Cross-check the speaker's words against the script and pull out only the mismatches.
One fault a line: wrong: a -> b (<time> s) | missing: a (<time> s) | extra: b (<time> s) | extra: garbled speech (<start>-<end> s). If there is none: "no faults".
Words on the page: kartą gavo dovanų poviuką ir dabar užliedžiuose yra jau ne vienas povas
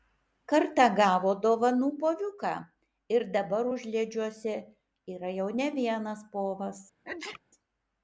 no faults